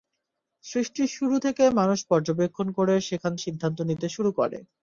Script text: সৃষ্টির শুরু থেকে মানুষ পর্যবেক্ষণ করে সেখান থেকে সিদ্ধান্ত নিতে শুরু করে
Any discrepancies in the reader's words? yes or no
yes